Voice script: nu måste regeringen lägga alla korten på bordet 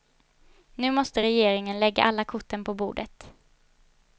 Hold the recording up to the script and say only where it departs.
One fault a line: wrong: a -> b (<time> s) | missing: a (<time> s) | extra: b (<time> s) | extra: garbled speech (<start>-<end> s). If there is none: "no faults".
no faults